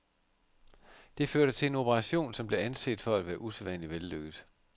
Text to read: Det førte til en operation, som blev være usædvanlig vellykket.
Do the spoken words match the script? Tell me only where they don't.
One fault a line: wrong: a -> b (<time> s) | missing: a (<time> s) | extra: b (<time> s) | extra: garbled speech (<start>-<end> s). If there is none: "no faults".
extra: anset for at (2.6 s)